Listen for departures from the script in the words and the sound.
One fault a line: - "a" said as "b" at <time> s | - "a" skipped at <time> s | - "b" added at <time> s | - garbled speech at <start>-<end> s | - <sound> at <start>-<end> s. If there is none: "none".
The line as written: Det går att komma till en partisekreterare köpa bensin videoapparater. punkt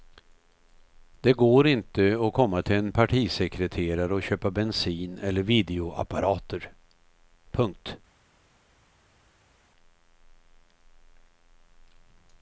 - "inte" added at 1.7 s
- "och" added at 4.1 s
- "eller" added at 5.2 s